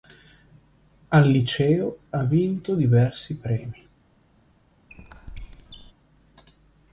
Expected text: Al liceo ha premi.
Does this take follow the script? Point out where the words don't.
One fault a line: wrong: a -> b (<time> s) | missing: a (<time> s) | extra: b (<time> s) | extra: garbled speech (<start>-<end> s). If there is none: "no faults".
extra: vinto diversi (2.2 s)